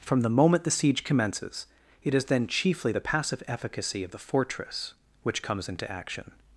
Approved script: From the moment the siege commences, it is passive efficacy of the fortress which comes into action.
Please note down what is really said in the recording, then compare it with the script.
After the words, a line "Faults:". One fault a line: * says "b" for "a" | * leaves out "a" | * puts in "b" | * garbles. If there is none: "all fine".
From the moment the siege commences, it is then chiefly the passive efficacy of the fortress which comes into action.
Faults:
* puts in "then chiefly the"